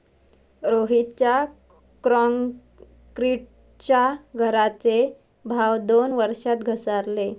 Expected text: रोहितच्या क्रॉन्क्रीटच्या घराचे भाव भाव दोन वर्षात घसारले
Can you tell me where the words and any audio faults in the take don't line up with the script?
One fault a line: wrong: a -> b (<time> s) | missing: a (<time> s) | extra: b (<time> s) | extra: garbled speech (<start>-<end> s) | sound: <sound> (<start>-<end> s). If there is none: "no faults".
missing: भाव (5.8 s)